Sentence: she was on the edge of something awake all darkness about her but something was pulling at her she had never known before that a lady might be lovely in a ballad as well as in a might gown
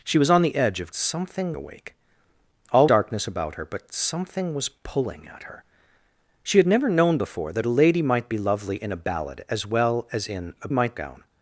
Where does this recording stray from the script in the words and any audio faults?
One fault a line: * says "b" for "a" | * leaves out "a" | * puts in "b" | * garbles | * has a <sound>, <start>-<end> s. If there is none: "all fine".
all fine